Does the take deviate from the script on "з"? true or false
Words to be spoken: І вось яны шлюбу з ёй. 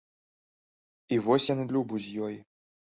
false